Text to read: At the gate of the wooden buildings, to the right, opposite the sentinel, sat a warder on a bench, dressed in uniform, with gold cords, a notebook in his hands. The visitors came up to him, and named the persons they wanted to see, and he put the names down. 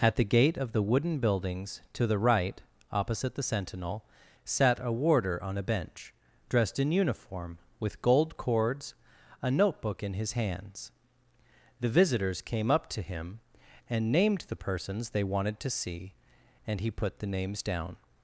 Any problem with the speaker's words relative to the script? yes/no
no